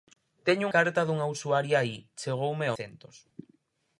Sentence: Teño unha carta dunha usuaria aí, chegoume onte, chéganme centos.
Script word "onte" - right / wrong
wrong